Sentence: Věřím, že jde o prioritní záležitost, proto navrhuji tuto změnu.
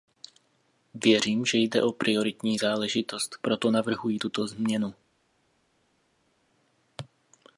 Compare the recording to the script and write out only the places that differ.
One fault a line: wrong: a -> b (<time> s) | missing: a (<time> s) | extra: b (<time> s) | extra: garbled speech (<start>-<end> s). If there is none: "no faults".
no faults